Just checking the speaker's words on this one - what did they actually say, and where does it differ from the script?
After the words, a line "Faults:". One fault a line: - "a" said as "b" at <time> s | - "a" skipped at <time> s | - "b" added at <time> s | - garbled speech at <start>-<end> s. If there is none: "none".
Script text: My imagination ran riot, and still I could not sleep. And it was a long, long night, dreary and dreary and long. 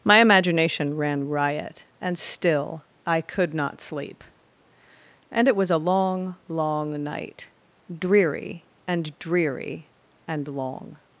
My imagination ran riot, and still I could not sleep. And it was a long, long night, dreary and dreary and long.
Faults:
none